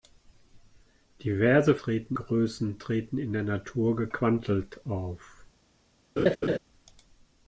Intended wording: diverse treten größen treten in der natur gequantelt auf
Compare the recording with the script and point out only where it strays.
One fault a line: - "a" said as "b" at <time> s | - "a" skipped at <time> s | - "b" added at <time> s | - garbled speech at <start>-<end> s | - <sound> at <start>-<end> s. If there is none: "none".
- laugh at 6.2-6.6 s